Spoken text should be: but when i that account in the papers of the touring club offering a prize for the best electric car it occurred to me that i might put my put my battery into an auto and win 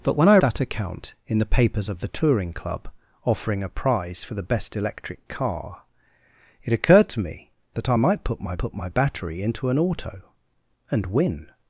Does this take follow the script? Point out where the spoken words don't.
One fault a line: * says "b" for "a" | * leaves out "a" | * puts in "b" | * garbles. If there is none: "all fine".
all fine